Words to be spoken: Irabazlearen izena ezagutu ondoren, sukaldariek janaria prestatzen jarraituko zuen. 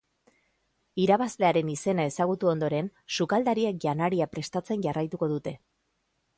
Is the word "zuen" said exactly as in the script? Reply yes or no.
no